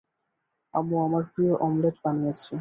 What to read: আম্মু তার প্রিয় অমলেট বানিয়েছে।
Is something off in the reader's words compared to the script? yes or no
yes